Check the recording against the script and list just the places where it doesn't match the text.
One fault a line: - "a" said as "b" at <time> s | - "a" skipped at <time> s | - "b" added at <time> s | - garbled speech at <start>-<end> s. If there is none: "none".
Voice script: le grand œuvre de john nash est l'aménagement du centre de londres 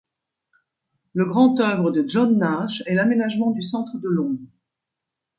none